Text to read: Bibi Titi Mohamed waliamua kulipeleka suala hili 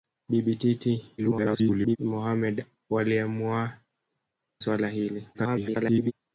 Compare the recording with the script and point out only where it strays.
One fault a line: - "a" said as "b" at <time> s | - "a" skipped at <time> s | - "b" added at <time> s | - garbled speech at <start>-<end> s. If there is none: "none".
- garbled speech at 1.2-2.0 s
- "kulipeleka" skipped at 3.7 s
- garbled speech at 5.3-6.1 s